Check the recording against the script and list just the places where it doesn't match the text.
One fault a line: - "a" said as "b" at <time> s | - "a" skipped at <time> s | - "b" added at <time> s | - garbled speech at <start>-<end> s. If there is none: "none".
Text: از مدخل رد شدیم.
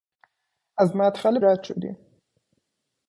none